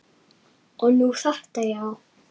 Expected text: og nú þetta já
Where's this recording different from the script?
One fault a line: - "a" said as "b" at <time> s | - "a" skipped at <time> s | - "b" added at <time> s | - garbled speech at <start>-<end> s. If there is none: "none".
none